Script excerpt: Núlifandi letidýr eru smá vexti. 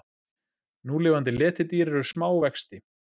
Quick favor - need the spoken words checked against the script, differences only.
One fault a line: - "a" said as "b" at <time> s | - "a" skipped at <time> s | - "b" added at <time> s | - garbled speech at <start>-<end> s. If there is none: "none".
none